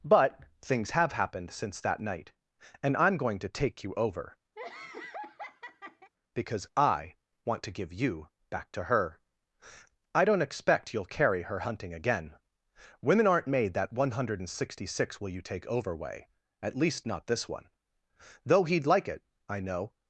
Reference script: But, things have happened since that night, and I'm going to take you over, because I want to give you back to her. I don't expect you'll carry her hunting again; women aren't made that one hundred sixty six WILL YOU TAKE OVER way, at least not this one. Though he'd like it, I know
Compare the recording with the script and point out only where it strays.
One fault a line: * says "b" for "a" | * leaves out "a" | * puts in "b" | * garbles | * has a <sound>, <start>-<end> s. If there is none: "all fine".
* has a laugh, 4.6-6.1 s